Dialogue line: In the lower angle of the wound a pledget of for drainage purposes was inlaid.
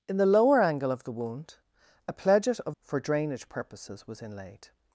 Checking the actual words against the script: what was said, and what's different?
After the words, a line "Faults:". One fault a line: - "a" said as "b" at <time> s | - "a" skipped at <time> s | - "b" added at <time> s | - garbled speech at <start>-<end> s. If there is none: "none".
In the lower angle of the wound a pledget of for drainage purposes was inlaid.
Faults:
none